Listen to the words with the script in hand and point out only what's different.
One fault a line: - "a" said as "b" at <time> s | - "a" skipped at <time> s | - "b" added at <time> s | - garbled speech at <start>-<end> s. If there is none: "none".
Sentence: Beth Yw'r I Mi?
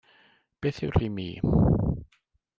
none